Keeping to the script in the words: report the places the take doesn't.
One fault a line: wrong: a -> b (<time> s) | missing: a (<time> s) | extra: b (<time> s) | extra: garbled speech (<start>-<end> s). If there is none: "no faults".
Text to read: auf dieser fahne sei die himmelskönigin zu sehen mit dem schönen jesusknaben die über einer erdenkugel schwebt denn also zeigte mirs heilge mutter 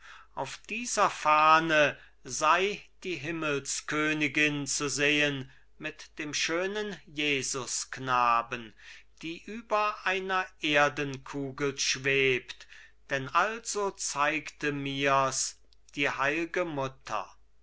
extra: die (16.0 s)